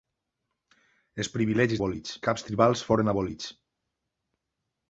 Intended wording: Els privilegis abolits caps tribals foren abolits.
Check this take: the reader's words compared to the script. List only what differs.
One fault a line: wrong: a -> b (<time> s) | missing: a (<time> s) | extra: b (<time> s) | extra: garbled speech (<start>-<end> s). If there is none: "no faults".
no faults